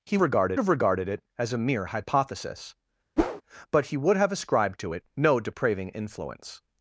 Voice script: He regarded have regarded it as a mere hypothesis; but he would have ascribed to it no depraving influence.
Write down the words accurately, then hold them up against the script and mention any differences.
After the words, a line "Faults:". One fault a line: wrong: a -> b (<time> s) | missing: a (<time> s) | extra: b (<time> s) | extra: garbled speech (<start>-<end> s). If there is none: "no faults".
He regarded have regarded it as a mere hypothesis; but he would have ascribed to it no depraving influence.
Faults:
no faults